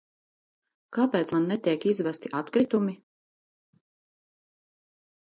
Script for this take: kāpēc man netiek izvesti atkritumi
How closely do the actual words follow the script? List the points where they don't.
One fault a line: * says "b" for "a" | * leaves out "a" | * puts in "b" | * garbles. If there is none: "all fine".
all fine